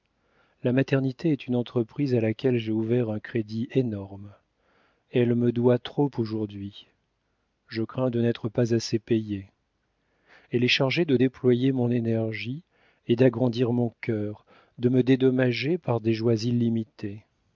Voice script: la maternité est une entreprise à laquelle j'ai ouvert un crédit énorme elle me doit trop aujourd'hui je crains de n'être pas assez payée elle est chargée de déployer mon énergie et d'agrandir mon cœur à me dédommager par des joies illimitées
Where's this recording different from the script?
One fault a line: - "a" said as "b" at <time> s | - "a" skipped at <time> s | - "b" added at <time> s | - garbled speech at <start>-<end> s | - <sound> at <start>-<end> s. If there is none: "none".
- "à" said as "de" at 14.8 s